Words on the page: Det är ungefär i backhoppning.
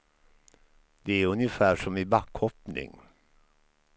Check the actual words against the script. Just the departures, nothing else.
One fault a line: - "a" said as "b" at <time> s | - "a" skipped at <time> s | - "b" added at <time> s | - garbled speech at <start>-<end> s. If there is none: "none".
- "som" added at 1.7 s